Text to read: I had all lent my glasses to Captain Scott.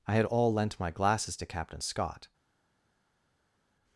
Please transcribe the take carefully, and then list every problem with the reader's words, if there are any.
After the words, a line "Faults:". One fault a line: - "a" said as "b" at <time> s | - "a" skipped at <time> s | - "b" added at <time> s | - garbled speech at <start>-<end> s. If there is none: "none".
I had all lent my glasses to Captain Scott.
Faults:
none